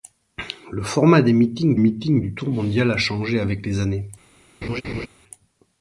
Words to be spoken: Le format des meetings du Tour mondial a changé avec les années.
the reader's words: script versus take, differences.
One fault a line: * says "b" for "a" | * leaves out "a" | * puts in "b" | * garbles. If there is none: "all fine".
* puts in "meetings"